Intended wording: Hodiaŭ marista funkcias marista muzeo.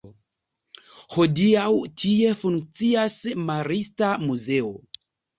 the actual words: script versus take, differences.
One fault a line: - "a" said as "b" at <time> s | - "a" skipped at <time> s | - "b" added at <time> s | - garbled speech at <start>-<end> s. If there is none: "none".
- "marista" said as "tie" at 2.0 s